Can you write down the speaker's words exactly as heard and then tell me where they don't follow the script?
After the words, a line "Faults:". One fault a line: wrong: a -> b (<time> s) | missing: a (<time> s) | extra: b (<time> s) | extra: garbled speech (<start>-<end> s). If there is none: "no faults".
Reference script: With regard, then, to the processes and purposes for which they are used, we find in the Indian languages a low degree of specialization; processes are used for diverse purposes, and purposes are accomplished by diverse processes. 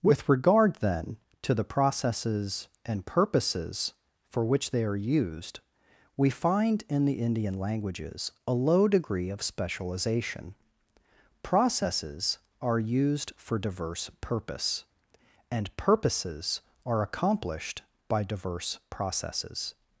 With regard, then, to the processes and purposes for which they are used, we find in the Indian languages a low degree of specialization; processes are used for diverse purpose, and purposes are accomplished by diverse processes.
Faults:
wrong: purposes -> purpose (14.2 s)